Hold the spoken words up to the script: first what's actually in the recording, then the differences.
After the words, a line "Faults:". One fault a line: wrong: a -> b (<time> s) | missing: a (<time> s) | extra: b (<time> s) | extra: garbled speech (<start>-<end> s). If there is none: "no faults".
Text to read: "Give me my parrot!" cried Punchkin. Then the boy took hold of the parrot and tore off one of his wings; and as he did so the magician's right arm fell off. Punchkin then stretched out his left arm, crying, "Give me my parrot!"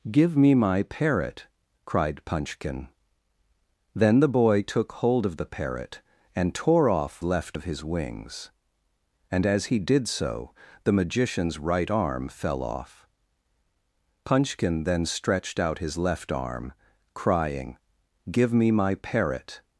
"Give me my parrot!" cried Punchkin. Then the boy took hold of the parrot and tore off left of his wings; and as he did so the magician's right arm fell off. Punchkin then stretched out his left arm, crying, "Give me my parrot!"
Faults:
wrong: one -> left (7.2 s)